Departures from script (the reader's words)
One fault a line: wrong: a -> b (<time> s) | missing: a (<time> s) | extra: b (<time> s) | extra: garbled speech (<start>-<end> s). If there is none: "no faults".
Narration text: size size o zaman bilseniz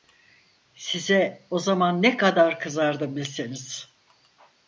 missing: size (1.5 s)
extra: ne kadar kızardım (2.0 s)